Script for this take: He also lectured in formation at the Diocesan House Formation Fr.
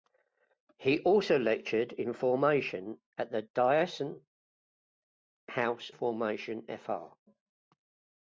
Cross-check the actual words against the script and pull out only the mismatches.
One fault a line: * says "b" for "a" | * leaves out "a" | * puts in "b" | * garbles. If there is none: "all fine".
all fine